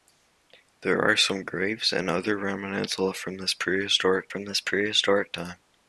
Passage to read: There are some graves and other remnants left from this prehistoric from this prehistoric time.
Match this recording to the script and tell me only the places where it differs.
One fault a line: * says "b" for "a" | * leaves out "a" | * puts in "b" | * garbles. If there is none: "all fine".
all fine